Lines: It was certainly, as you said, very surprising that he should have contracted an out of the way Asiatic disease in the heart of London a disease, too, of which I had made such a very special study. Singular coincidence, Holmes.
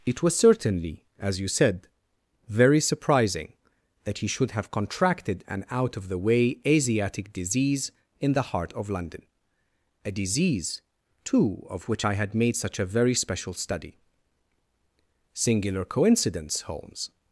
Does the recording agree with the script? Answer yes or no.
yes